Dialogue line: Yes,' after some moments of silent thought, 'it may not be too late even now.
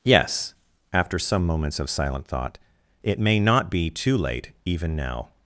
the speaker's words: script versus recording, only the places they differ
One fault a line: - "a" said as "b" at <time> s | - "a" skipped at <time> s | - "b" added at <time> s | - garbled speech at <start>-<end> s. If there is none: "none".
none